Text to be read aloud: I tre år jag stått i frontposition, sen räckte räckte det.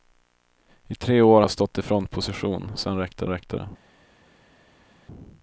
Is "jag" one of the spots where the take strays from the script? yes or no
no